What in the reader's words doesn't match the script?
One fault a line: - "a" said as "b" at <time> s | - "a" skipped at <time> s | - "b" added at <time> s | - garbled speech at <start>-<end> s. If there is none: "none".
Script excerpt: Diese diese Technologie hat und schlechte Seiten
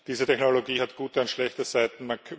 - "diese" skipped at 0.2 s
- "gute" added at 0.9 s